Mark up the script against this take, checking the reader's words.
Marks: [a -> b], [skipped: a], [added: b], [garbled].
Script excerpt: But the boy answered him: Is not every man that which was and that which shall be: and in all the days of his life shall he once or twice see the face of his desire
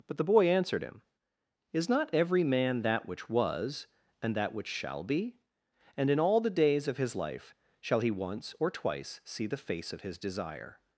But the boy answered him: Is not every man that which was and that which shall be: and in all the days of his life shall he once or twice see the face of his desire